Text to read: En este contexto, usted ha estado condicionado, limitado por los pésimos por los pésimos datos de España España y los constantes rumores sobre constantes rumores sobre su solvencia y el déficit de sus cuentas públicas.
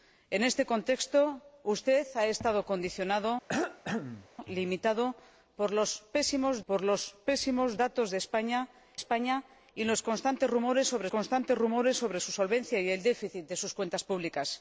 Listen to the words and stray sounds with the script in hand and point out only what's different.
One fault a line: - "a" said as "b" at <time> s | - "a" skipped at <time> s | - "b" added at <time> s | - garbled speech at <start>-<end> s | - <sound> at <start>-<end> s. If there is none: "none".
- cough at 3.5-4.3 s